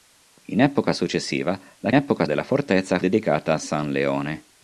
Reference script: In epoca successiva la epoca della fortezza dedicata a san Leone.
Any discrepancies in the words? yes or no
no